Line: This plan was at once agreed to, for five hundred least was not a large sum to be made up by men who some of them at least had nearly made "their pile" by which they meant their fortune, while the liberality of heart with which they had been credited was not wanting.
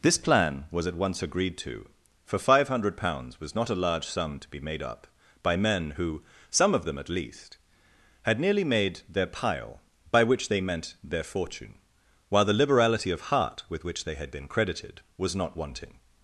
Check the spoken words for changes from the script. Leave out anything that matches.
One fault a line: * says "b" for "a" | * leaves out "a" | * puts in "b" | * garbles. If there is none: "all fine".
* says "pounds" for "least"